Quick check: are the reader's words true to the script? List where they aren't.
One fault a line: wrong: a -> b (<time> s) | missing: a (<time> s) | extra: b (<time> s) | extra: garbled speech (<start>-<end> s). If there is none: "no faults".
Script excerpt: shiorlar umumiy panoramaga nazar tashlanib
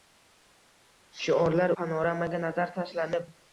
missing: umumiy (1.8 s)